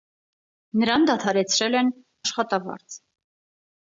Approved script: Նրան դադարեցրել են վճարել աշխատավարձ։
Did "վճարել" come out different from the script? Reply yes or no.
yes